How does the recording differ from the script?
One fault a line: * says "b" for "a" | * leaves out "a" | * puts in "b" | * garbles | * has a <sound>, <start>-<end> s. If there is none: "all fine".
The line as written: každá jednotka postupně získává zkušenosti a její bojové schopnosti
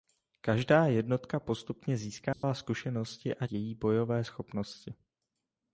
* has a dropout, 2.3-2.4 s